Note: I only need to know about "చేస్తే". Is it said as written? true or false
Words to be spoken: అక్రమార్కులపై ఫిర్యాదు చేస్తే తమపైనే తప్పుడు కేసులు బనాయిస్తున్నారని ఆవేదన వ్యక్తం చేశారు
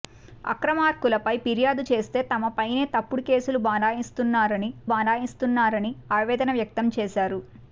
true